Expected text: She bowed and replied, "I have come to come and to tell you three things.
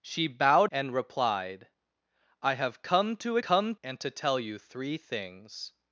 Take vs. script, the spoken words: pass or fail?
pass